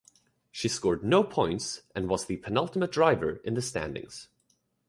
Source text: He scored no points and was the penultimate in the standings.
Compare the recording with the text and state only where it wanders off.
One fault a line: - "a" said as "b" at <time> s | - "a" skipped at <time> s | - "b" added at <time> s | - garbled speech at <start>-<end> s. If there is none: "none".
- "He" said as "She" at 0.5 s
- "driver" added at 2.9 s